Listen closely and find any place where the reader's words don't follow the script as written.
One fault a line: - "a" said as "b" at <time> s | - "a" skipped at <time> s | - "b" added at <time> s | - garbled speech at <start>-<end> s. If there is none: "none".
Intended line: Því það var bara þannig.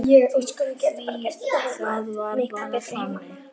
none